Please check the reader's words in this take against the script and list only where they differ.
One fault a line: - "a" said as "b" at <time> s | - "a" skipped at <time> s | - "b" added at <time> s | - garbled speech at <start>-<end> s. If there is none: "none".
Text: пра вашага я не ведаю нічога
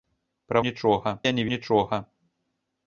- "вашага" said as "нічога" at 0.7 s
- "ведаю" skipped at 1.5 s